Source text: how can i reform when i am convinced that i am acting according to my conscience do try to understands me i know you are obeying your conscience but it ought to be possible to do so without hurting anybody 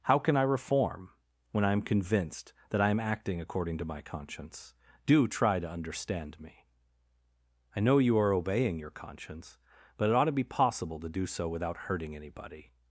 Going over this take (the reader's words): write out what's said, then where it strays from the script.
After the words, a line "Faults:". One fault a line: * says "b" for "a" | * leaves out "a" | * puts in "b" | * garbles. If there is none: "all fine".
how can i reform when i am convinced that i am acting according to my conscience do try to understand me i know you are obeying your conscience but it ought to be possible to do so without hurting anybody
Faults:
* says "understand" for "understands"